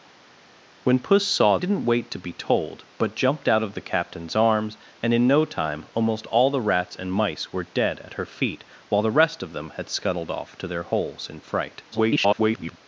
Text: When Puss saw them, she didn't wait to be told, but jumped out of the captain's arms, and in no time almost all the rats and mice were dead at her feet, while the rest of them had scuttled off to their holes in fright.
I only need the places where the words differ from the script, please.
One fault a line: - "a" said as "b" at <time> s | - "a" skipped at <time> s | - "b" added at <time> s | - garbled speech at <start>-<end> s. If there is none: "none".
- "them she" skipped at 1.6 s
- garbled speech at 11.9-12.8 s